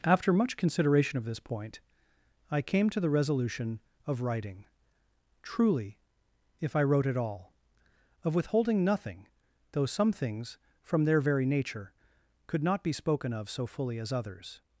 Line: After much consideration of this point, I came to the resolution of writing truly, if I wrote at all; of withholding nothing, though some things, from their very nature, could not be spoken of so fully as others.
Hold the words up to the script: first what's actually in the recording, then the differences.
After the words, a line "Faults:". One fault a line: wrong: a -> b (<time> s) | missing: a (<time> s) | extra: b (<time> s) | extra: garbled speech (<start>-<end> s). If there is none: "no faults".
After much consideration of this point, I came to the resolution of writing truly, if I wrote at all; of withholding nothing, though some things, from their very nature, could not be spoken of so fully as others.
Faults:
no faults